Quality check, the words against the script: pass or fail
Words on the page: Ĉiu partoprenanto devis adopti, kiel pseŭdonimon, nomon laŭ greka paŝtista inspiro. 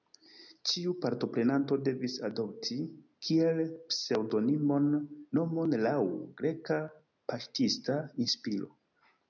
pass